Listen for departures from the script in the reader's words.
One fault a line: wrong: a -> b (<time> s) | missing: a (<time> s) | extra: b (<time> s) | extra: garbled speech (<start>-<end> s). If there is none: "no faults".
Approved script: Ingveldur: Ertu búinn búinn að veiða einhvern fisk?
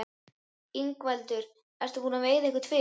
missing: búinn (2.2 s)